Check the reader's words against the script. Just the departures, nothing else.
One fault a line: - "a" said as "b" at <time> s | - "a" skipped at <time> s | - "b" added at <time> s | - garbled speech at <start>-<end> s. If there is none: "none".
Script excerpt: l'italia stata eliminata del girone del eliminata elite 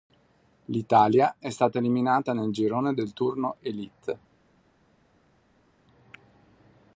- "è" added at 1.4 s
- "del" said as "nel" at 2.3 s
- "eliminata" said as "turno" at 3.1 s